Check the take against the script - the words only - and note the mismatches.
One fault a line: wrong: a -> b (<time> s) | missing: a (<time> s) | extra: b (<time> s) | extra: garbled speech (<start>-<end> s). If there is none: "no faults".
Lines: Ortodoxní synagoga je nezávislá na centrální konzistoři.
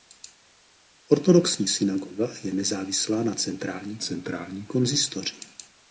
extra: centrální (4.0 s)